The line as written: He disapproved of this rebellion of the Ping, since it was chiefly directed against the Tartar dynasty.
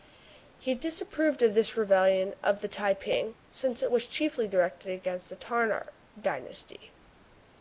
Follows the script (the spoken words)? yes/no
no